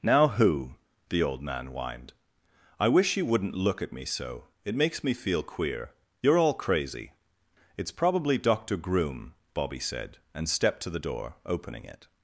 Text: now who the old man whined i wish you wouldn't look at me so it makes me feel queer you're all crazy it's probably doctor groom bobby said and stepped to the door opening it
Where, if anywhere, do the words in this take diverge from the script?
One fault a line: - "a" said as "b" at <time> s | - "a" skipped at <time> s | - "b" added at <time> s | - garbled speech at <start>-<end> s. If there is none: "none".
none